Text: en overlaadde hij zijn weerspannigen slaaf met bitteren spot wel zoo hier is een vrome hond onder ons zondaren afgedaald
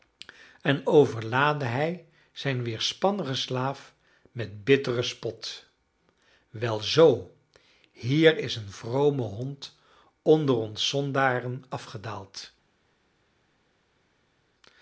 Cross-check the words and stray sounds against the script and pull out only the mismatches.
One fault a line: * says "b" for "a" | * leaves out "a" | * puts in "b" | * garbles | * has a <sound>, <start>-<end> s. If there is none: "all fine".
all fine